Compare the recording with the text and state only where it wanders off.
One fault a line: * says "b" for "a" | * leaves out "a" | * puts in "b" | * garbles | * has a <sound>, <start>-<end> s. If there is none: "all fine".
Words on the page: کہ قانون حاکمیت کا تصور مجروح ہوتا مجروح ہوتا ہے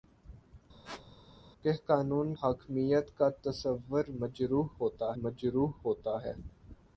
* has a squeak, 0.8-1.1 s